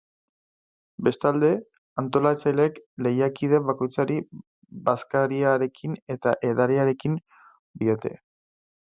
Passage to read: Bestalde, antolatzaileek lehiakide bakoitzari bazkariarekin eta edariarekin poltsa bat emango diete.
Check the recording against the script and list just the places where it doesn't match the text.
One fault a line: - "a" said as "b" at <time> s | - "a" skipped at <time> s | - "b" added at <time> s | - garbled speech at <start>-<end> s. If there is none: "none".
- "poltsa bat emango" skipped at 7.2 s